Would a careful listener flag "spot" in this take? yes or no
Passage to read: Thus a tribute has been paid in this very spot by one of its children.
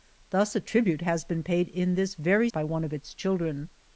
yes